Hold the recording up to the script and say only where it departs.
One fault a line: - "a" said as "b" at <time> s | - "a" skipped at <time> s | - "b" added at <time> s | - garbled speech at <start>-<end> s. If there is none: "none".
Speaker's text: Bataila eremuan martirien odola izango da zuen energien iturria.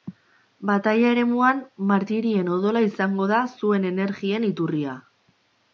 none